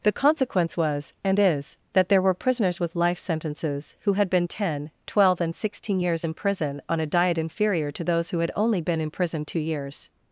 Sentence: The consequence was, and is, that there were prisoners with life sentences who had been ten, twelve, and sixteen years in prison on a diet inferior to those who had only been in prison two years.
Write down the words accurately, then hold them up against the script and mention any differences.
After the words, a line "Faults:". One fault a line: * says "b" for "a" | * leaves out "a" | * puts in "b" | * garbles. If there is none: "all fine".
The consequence was, and is, that there were prisoners with life sentences who had been ten, twelve, and sixteen years in prison on a diet inferior to those who had only been in prison two years.
Faults:
all fine